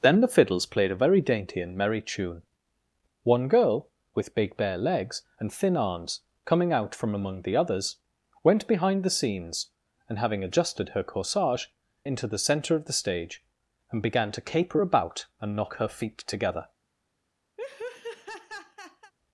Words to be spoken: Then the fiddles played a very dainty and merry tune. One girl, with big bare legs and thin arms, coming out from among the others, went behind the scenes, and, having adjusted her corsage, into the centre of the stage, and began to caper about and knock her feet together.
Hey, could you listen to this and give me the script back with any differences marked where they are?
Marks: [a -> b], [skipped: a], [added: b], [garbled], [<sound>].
Then the fiddles played a very dainty and merry tune. One girl, with big bare legs and thin arms, coming out from among the others, went behind the scenes, and, having adjusted her corsage, into the centre of the stage, and began to caper about and knock her feet together. [laugh]